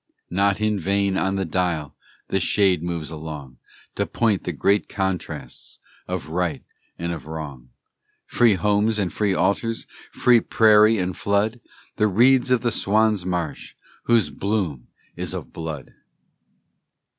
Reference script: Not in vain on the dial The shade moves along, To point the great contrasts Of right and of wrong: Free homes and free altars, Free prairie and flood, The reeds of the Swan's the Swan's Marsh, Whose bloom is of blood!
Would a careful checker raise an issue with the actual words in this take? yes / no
yes